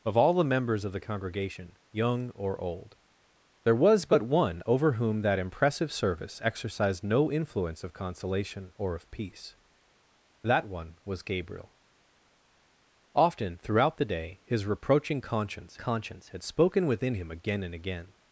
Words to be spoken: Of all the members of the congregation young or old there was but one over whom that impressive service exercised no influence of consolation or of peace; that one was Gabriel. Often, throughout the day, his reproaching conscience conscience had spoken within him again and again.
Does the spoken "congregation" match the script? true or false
true